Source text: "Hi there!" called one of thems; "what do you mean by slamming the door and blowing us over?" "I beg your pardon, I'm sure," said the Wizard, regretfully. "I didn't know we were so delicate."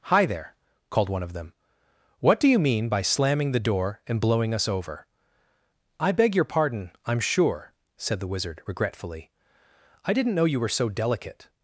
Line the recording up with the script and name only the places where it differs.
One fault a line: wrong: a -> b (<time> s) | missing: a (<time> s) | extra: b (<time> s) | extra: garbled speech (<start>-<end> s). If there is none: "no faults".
wrong: thems -> them (1.3 s)
wrong: we -> you (10.4 s)